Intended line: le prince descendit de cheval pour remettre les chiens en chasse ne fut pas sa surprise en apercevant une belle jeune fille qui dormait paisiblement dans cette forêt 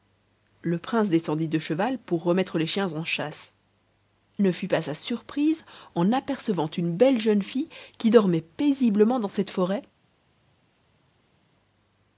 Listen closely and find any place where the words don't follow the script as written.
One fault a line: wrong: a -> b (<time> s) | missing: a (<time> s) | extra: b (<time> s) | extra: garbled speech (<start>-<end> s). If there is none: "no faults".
no faults